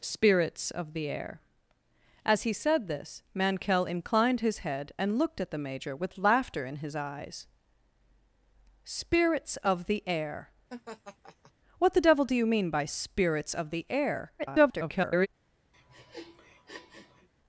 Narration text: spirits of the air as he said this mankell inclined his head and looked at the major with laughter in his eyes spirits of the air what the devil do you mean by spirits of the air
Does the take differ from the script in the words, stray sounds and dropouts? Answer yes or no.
yes